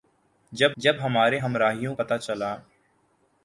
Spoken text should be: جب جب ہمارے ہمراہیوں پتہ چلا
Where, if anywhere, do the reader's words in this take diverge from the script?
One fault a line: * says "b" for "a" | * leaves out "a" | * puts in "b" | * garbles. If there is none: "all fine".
all fine